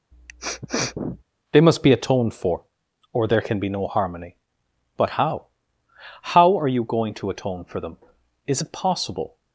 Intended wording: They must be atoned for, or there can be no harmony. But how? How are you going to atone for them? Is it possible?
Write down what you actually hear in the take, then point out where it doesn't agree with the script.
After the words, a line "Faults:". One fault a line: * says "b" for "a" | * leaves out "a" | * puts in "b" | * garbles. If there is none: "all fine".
They must be atoned for, or there can be no harmony. But how? How are you going to atone for them? Is it possible?
Faults:
all fine